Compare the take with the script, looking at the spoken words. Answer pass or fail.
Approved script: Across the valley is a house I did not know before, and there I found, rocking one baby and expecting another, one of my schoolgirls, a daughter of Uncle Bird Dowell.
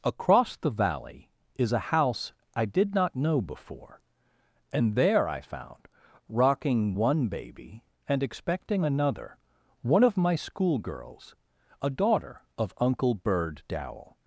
pass